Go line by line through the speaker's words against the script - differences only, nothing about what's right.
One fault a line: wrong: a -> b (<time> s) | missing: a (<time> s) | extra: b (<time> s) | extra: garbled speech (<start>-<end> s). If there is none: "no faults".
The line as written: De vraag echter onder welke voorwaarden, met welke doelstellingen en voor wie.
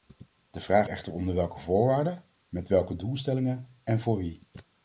no faults